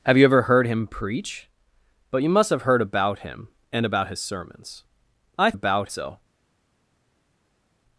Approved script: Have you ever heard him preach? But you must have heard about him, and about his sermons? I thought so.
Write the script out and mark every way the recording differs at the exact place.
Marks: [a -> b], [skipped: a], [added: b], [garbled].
Have you ever heard him preach? But you must have heard about him, and about his sermons? I [thought -> about] so.